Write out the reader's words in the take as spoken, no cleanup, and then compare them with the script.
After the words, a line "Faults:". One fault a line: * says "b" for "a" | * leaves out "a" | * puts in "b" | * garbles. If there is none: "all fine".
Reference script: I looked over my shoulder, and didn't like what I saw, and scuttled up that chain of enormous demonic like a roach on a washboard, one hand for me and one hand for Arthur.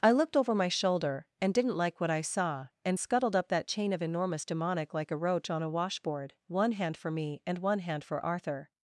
I looked over my shoulder, and didn't like what I saw, and scuttled up that chain of enormous demonic like a roach on a washboard, one hand for me and one hand for Arthur.
Faults:
all fine